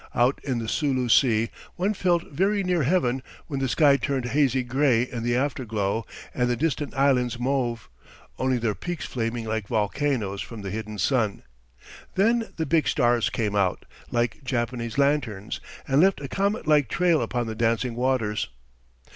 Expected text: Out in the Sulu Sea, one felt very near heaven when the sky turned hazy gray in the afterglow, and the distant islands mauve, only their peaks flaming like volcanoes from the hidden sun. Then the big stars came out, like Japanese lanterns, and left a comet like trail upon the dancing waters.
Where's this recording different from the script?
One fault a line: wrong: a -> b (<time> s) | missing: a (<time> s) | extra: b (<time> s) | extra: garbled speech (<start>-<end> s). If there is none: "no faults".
no faults